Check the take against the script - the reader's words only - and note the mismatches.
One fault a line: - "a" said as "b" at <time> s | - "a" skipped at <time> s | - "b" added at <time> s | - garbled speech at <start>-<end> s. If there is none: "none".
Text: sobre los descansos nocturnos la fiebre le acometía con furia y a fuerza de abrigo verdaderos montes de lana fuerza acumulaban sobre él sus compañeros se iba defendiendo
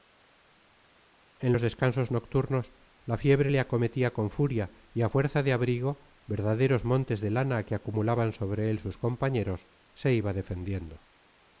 - "sobre" said as "en" at 1.4 s
- "fuerza" said as "que" at 7.6 s